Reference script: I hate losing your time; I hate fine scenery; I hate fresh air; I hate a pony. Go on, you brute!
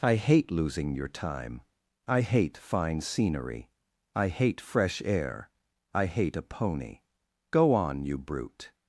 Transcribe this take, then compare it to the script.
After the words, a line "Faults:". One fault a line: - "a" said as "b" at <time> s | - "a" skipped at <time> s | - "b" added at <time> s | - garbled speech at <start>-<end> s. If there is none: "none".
I hate losing your time; I hate fine scenery; I hate fresh air; I hate a pony. Go on, you brute!
Faults:
none